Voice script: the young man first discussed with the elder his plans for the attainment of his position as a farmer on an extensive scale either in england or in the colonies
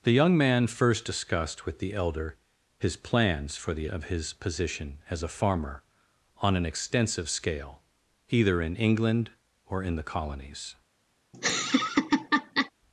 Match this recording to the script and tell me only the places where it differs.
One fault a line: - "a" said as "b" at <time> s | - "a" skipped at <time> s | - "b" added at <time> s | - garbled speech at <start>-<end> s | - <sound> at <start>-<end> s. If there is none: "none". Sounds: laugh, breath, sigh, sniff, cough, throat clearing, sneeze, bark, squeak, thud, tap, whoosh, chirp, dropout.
- "attainment" skipped at 3.9 s
- laugh at 11.3-12.7 s